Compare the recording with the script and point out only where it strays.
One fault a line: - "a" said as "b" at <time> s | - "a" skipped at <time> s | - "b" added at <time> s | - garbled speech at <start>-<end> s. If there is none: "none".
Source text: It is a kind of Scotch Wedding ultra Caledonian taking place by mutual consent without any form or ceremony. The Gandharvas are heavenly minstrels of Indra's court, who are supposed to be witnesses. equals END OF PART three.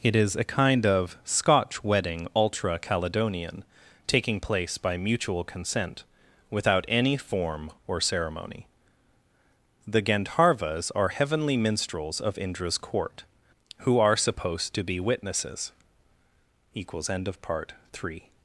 none